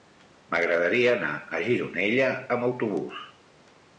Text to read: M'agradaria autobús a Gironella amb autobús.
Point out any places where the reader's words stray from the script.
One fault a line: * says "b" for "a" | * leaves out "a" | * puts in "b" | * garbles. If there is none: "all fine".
* says "anar" for "autobús"